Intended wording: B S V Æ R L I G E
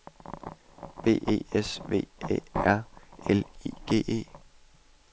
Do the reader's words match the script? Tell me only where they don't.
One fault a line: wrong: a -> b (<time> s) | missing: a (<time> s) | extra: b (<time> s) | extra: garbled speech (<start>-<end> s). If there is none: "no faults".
extra: E (1.3 s)